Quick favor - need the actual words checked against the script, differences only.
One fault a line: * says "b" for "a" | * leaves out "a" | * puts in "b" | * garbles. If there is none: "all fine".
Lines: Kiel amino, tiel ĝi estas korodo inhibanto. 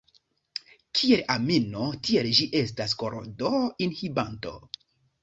all fine